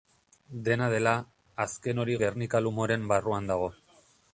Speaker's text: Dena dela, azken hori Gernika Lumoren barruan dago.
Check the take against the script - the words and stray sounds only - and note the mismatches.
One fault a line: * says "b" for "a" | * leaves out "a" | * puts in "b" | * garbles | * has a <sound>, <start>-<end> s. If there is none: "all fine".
all fine